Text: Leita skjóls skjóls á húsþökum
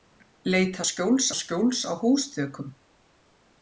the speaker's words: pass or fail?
pass